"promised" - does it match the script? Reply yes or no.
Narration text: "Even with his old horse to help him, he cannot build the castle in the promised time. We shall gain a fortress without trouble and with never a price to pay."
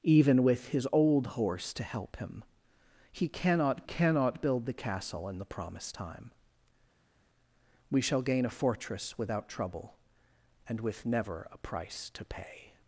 yes